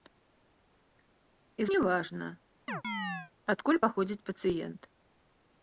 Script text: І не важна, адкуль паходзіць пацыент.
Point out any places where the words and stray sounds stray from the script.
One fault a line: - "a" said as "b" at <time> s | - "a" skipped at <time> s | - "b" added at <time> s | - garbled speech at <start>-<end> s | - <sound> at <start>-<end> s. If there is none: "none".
- chirp at 2.7-3.3 s